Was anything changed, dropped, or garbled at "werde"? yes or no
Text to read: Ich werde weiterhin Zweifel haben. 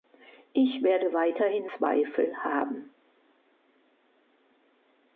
no